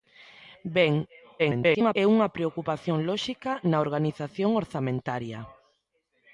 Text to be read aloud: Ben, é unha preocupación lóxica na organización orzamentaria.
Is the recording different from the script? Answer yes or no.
yes